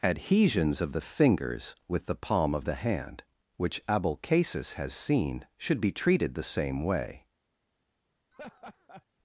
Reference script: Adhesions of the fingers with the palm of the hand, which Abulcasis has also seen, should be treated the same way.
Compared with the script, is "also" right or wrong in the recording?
wrong